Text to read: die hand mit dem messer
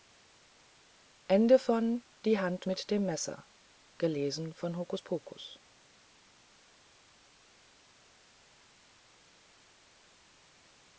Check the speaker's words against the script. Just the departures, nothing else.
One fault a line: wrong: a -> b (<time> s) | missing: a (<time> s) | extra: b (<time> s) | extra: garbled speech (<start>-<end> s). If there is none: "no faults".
no faults